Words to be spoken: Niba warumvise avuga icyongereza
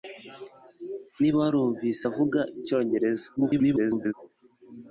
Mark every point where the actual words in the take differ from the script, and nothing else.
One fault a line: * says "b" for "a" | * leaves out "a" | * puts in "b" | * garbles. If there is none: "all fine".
* garbles